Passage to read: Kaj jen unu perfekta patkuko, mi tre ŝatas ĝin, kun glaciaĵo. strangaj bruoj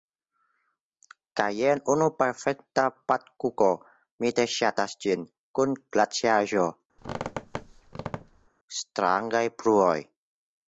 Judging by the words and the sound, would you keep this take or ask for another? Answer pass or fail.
fail